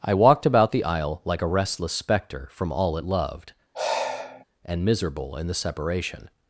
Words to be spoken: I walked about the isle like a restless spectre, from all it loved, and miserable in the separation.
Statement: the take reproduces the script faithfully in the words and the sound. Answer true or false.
false